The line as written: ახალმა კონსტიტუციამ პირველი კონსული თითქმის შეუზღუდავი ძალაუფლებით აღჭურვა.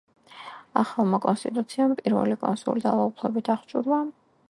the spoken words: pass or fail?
fail